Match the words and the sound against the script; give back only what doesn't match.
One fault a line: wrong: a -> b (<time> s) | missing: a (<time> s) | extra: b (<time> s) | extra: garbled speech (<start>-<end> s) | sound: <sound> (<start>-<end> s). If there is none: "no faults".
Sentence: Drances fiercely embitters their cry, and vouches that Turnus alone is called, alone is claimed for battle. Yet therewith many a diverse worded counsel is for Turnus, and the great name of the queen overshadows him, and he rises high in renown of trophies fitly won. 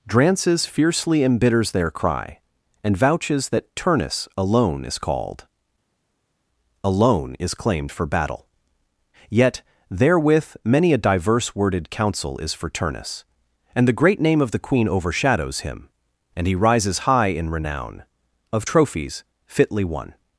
no faults